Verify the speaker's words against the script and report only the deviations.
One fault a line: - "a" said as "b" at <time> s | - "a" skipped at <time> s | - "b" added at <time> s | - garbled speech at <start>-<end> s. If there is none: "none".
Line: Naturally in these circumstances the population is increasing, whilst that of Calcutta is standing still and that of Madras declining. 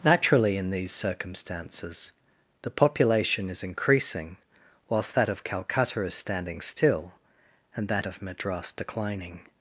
none